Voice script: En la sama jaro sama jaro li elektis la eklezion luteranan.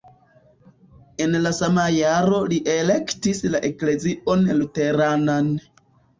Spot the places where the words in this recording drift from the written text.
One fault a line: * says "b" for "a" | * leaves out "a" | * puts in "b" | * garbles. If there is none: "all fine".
* leaves out "sama jaro"